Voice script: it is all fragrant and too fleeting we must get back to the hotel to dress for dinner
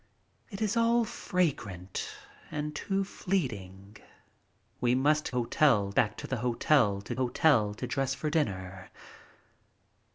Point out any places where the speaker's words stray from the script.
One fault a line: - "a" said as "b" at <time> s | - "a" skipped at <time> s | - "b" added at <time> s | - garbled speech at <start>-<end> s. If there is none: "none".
- "get" said as "hotel" at 5.3 s
- "hotel to" added at 7.1 s